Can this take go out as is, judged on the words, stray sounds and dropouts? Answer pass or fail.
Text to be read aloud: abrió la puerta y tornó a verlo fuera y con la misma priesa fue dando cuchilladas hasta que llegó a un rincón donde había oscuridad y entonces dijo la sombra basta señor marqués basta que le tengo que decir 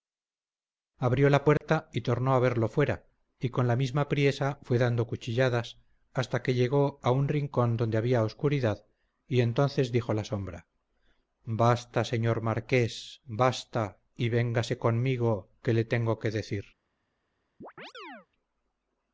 fail